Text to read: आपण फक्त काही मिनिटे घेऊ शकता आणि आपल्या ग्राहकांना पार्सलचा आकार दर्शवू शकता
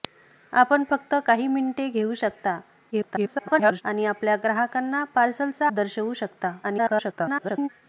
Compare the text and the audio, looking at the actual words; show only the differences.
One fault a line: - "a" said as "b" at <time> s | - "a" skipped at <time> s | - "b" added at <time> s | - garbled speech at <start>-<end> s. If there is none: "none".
- garbled speech at 2.9-3.8 s
- "आकार" skipped at 5.7 s
- garbled speech at 6.6-7.7 s